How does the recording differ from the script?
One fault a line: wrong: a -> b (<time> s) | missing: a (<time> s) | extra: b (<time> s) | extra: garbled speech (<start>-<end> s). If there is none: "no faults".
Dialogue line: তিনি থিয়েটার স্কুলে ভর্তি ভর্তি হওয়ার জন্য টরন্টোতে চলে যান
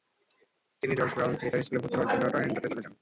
extra: জর্জ ব্রাউন (0.9 s)
missing: ভর্তি (2.0 s)